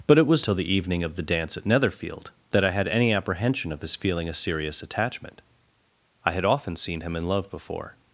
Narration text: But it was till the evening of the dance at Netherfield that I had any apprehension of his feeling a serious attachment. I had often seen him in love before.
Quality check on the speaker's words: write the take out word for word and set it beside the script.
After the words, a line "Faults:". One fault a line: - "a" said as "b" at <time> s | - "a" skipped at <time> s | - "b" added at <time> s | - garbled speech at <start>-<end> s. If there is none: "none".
But it was till the evening of the dance at Netherfield that I had any apprehension of his feeling a serious attachment. I had often seen him in love before.
Faults:
none